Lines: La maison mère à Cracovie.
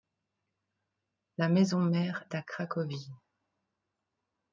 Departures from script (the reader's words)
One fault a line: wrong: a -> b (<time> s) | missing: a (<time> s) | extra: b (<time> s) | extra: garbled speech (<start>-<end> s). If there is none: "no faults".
no faults